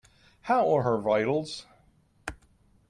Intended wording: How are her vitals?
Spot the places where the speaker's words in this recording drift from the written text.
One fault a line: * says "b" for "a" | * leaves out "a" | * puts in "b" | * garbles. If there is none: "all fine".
all fine